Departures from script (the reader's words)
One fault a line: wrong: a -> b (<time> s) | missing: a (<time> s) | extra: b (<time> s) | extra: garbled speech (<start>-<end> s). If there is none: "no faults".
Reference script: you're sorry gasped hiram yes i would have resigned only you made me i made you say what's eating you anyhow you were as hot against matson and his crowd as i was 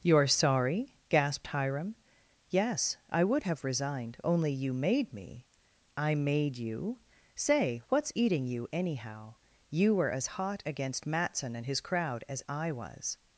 no faults